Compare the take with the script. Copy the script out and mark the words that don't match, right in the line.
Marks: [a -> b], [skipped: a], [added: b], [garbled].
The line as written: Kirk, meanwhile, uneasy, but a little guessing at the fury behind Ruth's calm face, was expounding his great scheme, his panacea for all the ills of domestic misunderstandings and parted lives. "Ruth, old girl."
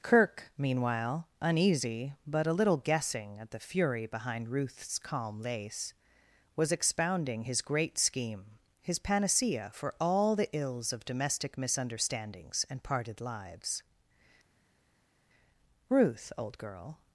Kirk, meanwhile, uneasy, but a little guessing at the fury behind Ruth's calm [face, -> lace] was expounding his great scheme, his panacea for all the ills of domestic misunderstandings and parted lives. "Ruth, old girl."